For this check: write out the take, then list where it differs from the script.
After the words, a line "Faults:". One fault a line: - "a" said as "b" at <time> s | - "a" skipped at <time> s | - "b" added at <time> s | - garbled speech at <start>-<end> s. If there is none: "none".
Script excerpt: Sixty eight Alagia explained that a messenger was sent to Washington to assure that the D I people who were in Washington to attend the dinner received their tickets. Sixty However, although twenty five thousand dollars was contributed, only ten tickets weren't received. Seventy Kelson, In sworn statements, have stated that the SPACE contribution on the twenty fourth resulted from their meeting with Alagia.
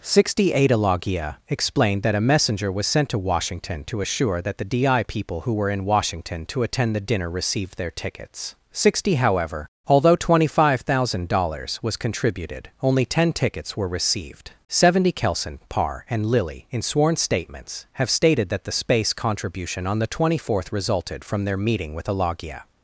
Sixty eight Alagia explained that a messenger was sent to Washington to assure that the D I people who were in Washington to attend the dinner received their tickets. Sixty However, although twenty five thousand dollars was contributed, only ten tickets were received. Seventy Kelson, Parr, and Lilly, in sworn statements, have stated that the SPACE contribution on the twenty fourth resulted from their meeting with Alagia.
Faults:
- "weren't" said as "were" at 13.8 s
- "Parr and Lilly" added at 15.7 s